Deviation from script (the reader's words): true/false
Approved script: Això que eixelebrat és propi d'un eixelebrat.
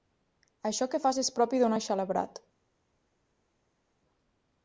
true